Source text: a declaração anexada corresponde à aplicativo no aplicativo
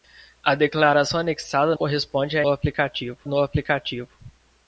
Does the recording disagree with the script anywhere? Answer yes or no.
no